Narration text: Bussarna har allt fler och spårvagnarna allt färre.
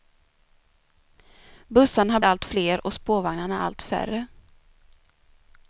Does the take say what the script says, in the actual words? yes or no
yes